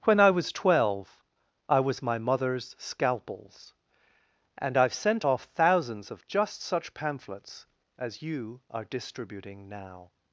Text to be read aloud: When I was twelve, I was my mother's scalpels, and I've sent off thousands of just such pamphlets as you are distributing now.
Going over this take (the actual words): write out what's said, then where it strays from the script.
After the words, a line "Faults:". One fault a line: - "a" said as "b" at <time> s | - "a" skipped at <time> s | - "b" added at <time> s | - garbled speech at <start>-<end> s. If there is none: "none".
When I was twelve, I was my mother's scalpels, and I've sent off thousands of just such pamphlets as you are distributing now.
Faults:
none